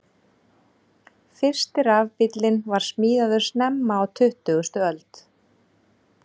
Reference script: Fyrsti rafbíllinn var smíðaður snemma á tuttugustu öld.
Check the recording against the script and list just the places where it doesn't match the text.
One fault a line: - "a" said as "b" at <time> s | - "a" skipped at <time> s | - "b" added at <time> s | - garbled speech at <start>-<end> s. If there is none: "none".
none